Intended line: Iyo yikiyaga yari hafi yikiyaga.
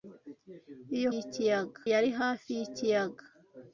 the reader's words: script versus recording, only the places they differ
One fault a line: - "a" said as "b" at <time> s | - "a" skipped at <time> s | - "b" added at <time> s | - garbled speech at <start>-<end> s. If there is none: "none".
none